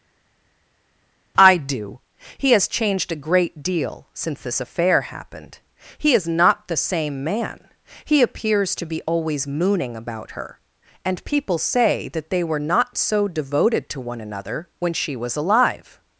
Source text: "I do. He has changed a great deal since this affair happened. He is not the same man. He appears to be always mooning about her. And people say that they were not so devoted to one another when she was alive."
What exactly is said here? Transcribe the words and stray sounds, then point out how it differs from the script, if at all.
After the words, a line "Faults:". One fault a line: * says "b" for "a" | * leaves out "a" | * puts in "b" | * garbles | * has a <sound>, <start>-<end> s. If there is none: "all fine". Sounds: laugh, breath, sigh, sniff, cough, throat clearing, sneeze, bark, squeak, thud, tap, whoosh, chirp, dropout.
"I do. He has changed a great deal since this affair happened. He is not the same man. He appears to be always mooning about her. And people say that they were not so devoted to one another when she was alive."
Faults:
all fine